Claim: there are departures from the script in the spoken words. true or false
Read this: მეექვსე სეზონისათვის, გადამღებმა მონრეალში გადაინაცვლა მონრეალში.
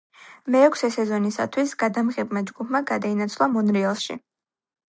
true